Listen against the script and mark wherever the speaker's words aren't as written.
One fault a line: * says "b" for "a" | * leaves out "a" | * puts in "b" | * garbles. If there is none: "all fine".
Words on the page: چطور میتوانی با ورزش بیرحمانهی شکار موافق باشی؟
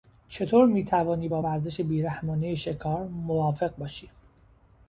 all fine